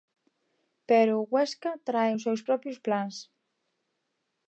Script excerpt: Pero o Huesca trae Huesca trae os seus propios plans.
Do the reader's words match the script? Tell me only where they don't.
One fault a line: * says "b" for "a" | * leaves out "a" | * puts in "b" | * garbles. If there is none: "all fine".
* leaves out "Huesca trae"